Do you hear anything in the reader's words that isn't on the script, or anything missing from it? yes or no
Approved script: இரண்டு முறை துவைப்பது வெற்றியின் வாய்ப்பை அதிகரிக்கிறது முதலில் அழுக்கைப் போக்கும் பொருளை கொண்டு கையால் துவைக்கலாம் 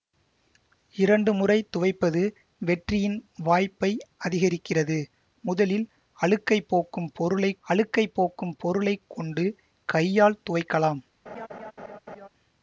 yes